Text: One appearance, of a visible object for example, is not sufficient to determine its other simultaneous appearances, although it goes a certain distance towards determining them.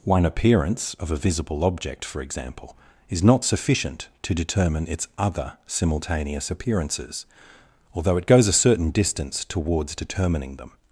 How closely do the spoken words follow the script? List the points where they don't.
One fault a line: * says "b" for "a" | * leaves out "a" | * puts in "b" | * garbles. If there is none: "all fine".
all fine